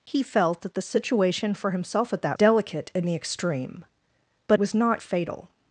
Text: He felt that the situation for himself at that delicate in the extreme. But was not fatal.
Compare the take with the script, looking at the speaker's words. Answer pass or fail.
pass